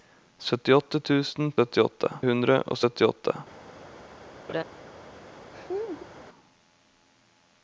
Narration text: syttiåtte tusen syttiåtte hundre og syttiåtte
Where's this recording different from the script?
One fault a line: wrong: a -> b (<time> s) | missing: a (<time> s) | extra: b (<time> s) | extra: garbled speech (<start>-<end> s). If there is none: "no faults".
no faults